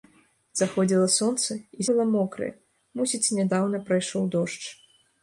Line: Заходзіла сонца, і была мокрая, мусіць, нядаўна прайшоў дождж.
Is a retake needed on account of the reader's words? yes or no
no